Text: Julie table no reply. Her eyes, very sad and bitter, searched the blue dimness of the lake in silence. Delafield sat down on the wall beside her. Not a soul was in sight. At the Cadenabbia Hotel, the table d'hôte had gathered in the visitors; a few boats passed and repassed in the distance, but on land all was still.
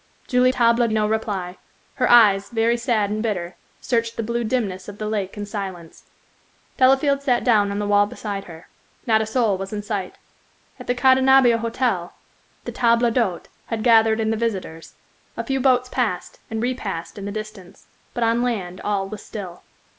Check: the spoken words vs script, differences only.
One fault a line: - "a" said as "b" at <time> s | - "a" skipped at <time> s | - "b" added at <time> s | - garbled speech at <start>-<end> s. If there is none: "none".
none